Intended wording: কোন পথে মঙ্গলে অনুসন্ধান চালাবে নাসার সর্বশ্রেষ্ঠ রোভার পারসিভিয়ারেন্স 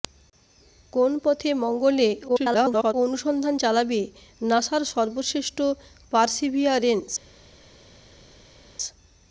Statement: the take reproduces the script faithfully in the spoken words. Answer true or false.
false